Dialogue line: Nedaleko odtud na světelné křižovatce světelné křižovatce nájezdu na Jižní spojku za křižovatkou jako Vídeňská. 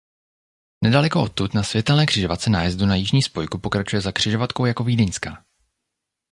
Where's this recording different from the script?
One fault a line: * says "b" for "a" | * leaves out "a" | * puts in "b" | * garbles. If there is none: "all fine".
* leaves out "světelné křižovatce"
* puts in "pokračuje"